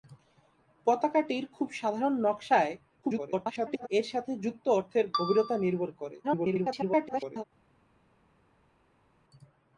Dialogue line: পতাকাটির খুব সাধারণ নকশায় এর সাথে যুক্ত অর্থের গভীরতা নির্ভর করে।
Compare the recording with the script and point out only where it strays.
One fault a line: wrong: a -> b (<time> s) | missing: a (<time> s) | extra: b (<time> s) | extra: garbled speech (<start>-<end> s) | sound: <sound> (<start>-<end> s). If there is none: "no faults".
extra: garbled speech (3.0-3.9 s)
extra: garbled speech (6.2-7.4 s)